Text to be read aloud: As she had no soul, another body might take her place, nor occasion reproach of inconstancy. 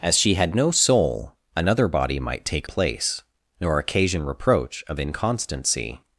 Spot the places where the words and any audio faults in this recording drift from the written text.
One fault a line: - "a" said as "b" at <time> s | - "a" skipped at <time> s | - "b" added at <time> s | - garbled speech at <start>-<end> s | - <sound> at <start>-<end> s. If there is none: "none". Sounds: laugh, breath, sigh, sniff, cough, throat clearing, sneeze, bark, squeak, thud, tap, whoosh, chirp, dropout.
- "her" skipped at 2.7 s